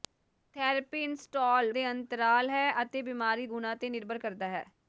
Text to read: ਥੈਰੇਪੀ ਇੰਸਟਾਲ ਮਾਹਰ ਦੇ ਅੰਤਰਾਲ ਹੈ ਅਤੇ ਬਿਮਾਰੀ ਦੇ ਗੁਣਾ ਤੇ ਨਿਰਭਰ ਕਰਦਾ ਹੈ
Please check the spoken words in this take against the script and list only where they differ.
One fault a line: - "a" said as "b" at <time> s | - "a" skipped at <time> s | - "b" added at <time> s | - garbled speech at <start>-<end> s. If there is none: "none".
- "ਮਾਹਰ" skipped at 1.7 s
- "ਦੇ" skipped at 3.5 s